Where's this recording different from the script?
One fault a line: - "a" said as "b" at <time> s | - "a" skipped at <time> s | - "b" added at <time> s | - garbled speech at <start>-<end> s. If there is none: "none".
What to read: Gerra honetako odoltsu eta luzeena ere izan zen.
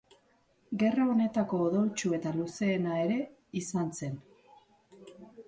none